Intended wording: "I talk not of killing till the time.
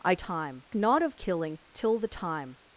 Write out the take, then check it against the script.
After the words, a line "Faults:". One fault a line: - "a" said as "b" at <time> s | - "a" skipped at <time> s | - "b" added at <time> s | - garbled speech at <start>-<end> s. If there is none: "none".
"I time not of killing till the time.
Faults:
- "talk" said as "time" at 0.1 s